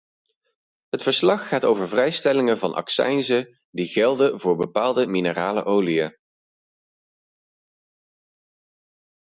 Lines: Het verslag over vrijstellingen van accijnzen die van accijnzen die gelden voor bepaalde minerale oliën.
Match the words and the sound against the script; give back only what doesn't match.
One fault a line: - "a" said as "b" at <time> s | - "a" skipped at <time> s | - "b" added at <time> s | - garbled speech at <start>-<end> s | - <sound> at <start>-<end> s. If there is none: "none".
- "gaat" added at 1.5 s
- "van accijnzen die" skipped at 3.9 s